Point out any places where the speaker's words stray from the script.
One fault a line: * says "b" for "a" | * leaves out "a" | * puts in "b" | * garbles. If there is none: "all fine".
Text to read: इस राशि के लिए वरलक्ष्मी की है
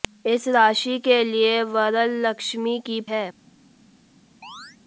all fine